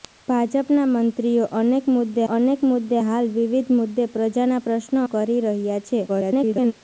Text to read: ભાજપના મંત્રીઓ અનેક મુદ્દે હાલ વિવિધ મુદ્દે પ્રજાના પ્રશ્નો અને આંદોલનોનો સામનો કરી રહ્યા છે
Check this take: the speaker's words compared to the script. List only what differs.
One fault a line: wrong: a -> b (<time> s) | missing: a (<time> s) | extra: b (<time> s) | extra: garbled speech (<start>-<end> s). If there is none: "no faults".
extra: અનેક મુદ્દે (2.3 s)
missing: અને આંદોલનોનો સામનો (5.0 s)
extra: garbled speech (6.1-6.7 s)